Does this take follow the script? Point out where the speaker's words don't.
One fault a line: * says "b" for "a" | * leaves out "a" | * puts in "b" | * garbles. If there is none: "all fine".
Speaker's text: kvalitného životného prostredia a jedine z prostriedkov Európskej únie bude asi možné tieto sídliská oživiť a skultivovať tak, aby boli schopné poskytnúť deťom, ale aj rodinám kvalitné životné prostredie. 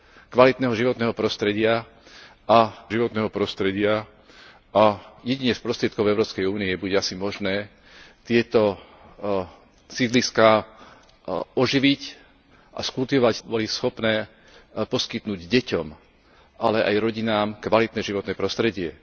* puts in "životného prostredia a"
* leaves out "tak aby"